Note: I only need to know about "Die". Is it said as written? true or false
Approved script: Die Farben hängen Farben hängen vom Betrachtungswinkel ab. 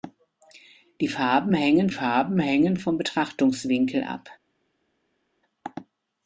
true